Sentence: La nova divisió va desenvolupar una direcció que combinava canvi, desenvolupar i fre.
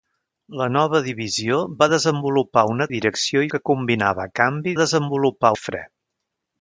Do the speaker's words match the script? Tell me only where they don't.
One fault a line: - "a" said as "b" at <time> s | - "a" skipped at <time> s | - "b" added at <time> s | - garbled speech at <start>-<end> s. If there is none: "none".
none